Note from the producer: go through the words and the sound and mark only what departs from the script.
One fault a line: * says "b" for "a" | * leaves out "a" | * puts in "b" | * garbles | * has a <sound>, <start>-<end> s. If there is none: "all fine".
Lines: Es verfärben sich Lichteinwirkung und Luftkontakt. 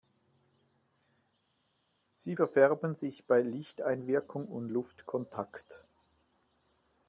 * says "Sie" for "Es"
* puts in "bei"